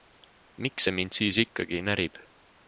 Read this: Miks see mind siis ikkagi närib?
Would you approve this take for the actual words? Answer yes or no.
yes